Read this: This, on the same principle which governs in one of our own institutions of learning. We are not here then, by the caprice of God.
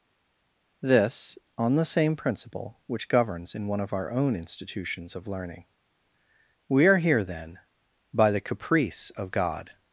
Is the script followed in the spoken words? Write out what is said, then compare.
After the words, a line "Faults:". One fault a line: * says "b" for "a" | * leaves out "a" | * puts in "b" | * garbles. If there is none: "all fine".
This, on the same principle which governs in one of our own institutions of learning. We are here then, by the caprice of God.
Faults:
* leaves out "not"